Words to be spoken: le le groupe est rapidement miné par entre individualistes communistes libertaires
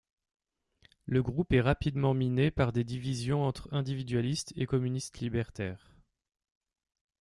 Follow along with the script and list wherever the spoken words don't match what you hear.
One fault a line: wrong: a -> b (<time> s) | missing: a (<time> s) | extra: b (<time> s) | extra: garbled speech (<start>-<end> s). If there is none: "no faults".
missing: le (1.2 s)
extra: des divisions (2.7 s)
extra: et (4.5 s)